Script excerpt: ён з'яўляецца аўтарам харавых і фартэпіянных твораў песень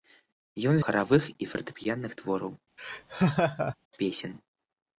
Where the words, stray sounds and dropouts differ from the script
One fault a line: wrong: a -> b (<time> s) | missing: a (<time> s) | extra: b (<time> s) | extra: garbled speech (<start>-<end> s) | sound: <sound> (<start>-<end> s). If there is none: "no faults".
missing: з'яўляецца аўтарам (0.8 s)
sound: laugh (2.8-3.8 s)